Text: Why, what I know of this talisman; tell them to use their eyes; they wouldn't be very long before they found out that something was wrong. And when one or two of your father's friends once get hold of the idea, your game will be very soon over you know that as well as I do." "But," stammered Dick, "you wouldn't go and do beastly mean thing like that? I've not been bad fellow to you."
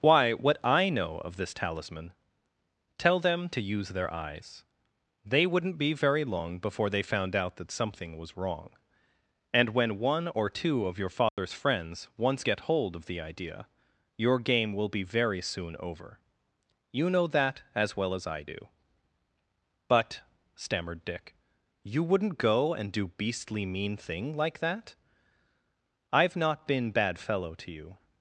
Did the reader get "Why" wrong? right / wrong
right